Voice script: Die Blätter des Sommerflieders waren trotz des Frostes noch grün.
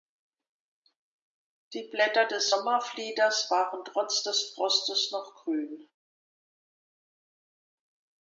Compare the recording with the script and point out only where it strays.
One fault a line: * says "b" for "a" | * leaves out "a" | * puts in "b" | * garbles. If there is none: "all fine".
all fine